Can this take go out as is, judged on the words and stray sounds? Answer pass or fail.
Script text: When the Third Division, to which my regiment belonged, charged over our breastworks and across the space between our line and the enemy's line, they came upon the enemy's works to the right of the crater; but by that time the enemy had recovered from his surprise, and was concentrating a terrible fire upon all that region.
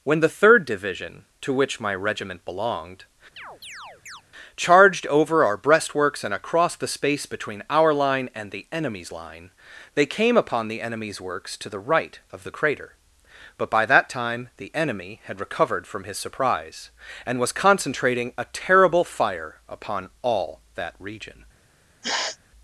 fail